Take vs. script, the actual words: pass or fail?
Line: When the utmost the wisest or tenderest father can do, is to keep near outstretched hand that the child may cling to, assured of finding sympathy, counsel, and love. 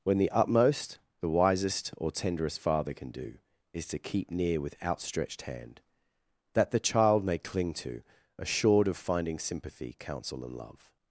fail